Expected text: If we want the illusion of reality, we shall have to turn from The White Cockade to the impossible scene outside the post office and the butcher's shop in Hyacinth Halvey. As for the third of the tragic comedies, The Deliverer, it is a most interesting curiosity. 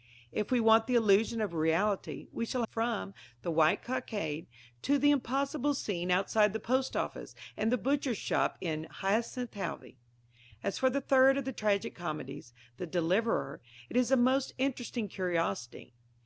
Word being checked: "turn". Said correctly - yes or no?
no